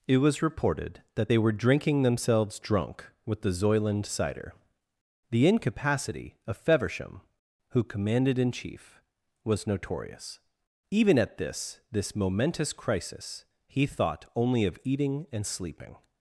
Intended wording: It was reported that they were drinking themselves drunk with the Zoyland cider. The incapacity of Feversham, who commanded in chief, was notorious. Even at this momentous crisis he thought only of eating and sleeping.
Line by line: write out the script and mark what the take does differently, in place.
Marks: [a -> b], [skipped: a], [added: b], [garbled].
It was reported that they were drinking themselves drunk with the Zoyland cider. The incapacity of Feversham, who commanded in chief, was notorious. Even at this [added: this] momentous crisis he thought only of eating and sleeping.